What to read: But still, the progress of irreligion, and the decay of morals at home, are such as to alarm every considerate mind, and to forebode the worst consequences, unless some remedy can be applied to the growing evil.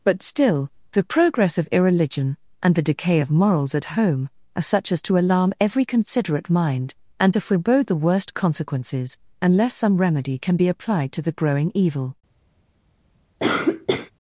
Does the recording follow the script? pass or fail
pass